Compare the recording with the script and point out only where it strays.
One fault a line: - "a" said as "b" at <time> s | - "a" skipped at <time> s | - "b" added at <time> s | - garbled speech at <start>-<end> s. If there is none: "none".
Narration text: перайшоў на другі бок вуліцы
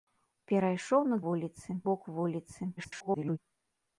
- "другі" said as "вуліцы" at 1.3 s
- garbled speech at 2.8-3.4 s